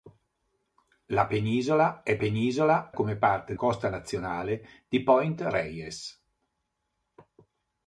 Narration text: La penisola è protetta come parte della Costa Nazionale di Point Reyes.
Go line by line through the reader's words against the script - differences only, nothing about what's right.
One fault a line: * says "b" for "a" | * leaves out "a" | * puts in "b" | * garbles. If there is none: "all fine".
* says "penisola" for "protetta"
* leaves out "della"